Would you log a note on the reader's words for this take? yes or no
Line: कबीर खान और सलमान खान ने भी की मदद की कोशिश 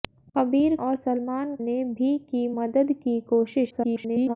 yes